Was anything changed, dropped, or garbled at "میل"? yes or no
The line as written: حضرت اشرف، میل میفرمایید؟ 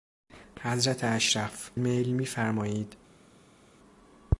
no